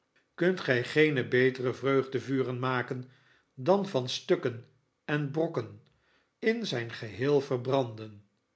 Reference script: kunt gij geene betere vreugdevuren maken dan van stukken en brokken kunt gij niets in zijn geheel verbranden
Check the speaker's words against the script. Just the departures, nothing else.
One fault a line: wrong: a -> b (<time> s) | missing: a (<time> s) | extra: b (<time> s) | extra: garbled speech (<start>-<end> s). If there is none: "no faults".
missing: kunt gij niets (5.8 s)